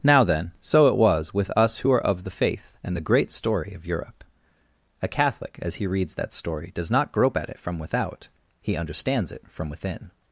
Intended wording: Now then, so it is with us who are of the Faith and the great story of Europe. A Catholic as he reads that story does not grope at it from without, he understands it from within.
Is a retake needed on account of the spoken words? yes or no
yes